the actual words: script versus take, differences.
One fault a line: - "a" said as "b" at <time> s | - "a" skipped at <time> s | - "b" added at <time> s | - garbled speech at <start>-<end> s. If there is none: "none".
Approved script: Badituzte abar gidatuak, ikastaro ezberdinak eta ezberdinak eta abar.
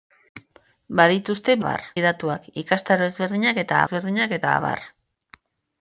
none